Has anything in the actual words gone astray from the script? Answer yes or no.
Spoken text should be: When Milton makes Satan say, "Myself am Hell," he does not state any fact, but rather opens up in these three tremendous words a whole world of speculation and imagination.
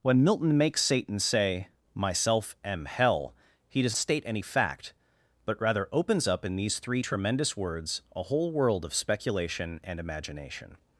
yes